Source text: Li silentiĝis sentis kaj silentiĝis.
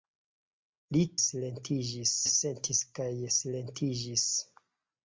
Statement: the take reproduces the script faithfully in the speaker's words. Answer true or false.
true